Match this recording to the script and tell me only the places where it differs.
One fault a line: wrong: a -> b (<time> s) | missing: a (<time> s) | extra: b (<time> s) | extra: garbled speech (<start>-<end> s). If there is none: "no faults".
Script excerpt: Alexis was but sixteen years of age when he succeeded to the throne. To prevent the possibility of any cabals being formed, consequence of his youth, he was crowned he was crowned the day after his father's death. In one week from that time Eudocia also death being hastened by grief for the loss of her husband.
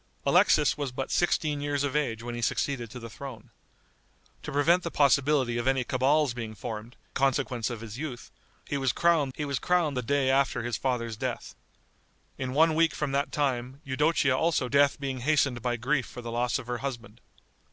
no faults